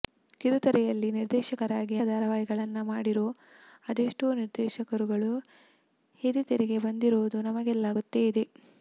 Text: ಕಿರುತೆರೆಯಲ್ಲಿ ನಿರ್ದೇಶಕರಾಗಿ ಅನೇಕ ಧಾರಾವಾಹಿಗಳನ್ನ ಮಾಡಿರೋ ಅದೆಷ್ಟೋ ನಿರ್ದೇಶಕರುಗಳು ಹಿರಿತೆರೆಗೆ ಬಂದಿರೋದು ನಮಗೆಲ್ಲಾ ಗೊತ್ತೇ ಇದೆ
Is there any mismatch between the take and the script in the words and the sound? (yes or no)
yes